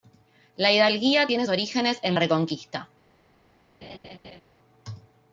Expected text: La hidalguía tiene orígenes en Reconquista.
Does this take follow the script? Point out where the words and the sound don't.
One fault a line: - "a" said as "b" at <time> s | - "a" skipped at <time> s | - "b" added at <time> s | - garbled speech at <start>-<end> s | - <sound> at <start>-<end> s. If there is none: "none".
- laugh at 3.8-4.4 s